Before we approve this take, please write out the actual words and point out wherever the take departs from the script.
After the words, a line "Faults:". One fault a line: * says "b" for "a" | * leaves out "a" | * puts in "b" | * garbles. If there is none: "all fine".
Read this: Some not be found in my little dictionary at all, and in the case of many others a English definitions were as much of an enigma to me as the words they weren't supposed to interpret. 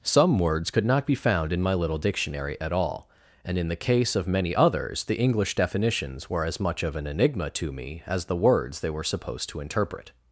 Some words could not be found in my little dictionary at all, and in the case of many others the English definitions were as much of an enigma to me as the words they were supposed to interpret.
Faults:
* puts in "words could"
* says "the" for "a"
* says "were" for "weren't"